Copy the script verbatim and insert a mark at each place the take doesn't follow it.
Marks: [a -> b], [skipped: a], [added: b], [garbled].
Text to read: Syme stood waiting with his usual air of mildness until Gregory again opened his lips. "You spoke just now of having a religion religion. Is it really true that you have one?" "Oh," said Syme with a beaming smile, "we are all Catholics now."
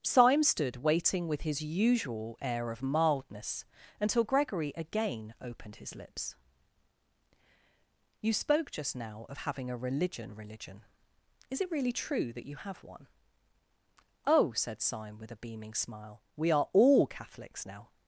Syme stood waiting with his usual air of mildness until Gregory again opened his lips. "You spoke just now of having a religion religion. Is it really true that you have one?" "Oh," said Syme with a beaming smile, "we are all Catholics now."